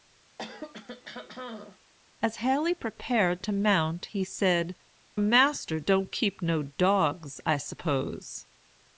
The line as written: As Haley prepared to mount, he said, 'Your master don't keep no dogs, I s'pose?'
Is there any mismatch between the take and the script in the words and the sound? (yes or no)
yes